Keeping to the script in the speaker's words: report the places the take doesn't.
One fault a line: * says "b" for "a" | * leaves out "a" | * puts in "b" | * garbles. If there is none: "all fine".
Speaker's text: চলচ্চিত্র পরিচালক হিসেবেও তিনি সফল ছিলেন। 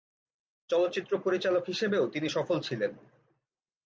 all fine